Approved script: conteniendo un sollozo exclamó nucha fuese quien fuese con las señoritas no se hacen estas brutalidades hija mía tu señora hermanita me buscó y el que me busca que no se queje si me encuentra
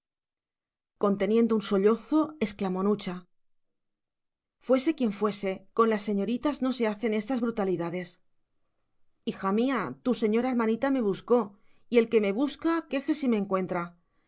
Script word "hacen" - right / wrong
right